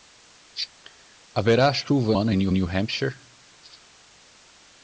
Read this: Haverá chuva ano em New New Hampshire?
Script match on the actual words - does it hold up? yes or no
yes